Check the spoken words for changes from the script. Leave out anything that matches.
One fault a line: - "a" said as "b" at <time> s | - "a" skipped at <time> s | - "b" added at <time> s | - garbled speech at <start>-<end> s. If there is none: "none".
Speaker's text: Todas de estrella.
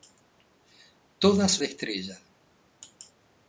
none